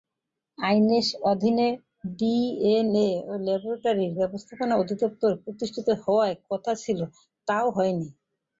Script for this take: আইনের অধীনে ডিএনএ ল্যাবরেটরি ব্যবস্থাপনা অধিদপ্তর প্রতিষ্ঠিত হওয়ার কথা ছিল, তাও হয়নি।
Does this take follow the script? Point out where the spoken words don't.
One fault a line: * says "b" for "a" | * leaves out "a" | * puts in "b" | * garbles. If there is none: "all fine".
all fine